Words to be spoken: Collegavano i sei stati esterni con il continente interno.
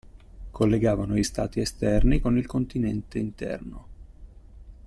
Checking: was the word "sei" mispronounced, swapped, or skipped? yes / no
yes